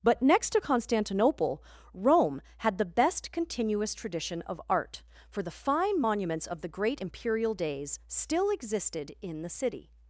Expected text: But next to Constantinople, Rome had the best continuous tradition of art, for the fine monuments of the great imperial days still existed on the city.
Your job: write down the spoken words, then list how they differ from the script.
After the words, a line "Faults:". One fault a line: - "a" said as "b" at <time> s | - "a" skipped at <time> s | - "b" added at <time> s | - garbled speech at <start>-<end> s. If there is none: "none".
But next to Constantinople, Rome had the best continuous tradition of art, for the fine monuments of the great imperial days still existed in the city.
Faults:
- "on" said as "in" at 9.2 s